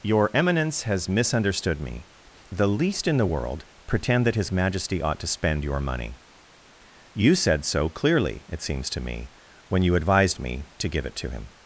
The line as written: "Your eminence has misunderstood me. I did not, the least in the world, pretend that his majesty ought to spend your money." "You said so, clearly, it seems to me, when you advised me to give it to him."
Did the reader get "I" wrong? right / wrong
wrong